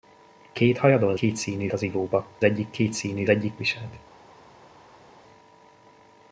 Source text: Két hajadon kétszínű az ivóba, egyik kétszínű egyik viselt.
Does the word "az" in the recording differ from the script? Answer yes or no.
no